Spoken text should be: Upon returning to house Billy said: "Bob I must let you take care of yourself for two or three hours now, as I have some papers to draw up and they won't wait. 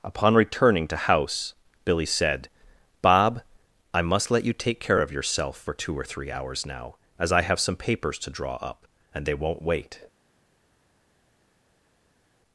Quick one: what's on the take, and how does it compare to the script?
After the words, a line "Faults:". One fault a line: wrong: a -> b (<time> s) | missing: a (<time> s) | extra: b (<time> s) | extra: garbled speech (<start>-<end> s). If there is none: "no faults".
Upon returning to house Billy said: "Bob I must let you take care of yourself for two or three hours now, as I have some papers to draw up and they won't wait.
Faults:
no faults